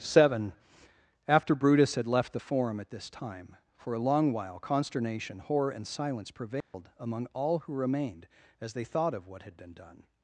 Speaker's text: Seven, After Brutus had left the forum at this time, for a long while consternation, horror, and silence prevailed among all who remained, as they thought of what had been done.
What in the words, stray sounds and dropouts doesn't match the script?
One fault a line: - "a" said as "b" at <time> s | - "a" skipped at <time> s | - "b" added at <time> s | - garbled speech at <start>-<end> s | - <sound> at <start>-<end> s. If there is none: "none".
- dropout at 6.6-6.7 s